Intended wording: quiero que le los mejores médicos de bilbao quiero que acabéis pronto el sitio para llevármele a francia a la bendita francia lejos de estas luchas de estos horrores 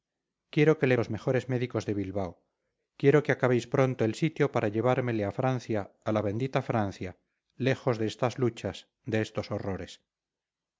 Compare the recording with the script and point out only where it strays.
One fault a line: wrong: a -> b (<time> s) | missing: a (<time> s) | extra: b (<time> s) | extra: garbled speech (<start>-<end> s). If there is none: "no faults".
no faults